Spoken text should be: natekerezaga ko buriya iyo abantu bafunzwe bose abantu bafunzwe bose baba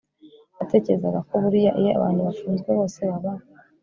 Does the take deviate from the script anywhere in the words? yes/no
yes